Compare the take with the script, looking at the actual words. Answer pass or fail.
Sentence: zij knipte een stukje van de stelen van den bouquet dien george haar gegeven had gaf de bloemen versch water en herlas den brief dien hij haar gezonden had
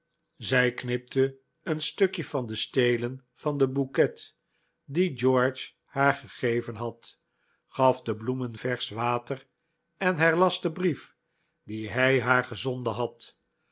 pass